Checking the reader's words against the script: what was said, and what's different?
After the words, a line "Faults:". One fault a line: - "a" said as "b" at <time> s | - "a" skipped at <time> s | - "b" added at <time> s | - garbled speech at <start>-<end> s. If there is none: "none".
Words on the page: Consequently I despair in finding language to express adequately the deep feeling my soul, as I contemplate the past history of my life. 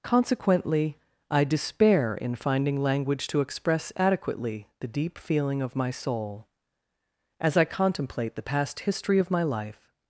Consequently I despair in finding language to express adequately the deep feeling of my soul, as I contemplate the past history of my life.
Faults:
- "of" added at 5.6 s